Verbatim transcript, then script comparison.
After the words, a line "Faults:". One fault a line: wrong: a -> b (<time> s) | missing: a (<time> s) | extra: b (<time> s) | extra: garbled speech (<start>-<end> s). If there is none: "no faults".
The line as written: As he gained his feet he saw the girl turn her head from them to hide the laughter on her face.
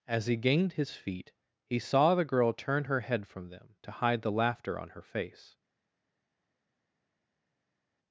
As he gained his feet he saw the girl turn her head from them to hide the laughter on her face.
Faults:
no faults